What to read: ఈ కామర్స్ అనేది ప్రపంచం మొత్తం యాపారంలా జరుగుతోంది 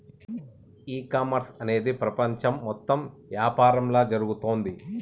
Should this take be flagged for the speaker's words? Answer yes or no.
no